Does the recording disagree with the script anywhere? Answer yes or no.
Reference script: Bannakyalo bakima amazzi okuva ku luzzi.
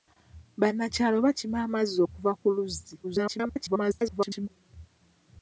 yes